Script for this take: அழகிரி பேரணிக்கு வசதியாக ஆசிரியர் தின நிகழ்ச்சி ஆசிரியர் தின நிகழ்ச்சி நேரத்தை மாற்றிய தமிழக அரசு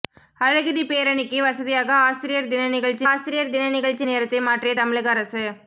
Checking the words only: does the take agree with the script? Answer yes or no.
yes